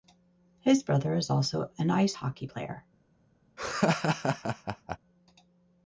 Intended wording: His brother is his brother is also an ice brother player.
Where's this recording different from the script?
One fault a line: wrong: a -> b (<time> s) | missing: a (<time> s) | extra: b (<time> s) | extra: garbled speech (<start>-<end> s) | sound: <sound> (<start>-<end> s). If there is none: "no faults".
missing: his brother is (1.3 s)
wrong: brother -> hockey (2.1 s)
sound: laugh (3.6-5.0 s)